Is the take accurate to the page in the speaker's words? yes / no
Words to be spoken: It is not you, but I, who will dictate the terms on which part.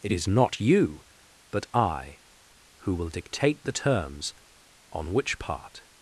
yes